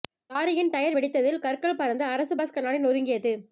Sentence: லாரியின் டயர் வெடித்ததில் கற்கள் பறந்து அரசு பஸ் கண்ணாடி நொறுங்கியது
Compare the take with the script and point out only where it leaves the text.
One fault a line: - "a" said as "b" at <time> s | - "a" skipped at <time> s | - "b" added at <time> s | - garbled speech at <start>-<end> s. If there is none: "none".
none